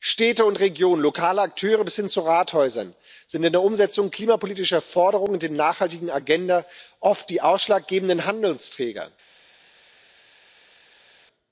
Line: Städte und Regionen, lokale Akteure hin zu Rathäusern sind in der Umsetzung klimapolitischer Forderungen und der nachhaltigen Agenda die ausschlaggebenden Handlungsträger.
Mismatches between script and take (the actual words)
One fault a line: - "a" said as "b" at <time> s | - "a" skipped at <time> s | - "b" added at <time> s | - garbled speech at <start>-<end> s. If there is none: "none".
- "bis" added at 1.8 s
- "oft" added at 7.0 s